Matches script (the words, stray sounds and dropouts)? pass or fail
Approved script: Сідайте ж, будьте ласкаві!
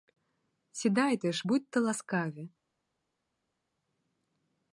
pass